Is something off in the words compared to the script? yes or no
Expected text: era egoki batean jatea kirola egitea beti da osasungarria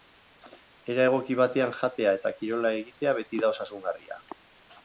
yes